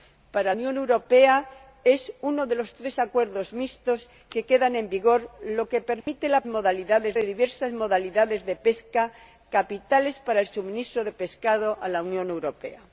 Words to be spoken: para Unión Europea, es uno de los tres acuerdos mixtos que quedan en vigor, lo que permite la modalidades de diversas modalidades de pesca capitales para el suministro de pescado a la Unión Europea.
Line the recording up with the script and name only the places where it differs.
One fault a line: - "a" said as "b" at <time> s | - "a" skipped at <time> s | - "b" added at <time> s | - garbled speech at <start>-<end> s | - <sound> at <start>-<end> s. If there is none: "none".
- dropout at 6.0-6.1 s